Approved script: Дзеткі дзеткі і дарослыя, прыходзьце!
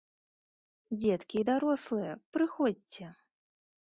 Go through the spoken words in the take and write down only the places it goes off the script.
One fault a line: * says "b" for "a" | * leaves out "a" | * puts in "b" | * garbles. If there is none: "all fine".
* leaves out "дзеткі"